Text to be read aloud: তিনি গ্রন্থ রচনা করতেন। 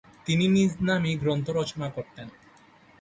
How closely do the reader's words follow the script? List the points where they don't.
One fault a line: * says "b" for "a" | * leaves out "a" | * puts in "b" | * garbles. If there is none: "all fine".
* puts in "নিজ নামেই"